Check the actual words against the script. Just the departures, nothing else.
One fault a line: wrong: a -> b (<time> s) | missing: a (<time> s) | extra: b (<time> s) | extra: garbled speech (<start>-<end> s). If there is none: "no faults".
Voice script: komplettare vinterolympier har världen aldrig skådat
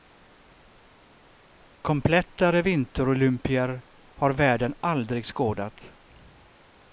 no faults